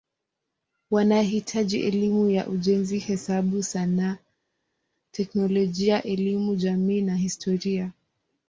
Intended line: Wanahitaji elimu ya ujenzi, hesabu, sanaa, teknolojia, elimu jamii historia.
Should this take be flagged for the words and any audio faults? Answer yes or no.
yes